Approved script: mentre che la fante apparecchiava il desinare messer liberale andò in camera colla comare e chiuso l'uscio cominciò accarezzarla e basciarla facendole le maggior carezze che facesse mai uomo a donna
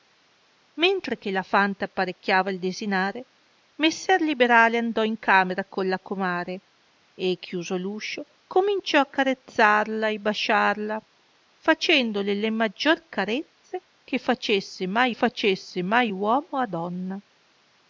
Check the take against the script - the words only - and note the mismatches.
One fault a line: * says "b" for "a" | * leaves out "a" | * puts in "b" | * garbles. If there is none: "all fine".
* puts in "facesse mai"